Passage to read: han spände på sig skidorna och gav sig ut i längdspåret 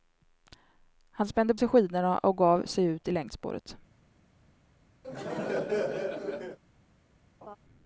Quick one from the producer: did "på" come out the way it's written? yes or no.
no